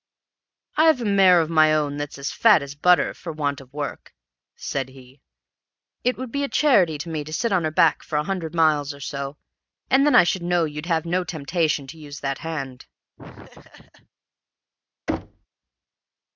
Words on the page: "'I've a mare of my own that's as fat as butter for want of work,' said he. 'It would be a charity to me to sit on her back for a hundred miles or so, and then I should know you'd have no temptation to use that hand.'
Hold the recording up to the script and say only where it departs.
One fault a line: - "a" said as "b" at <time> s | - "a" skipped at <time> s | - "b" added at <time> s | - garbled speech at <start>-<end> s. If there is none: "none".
none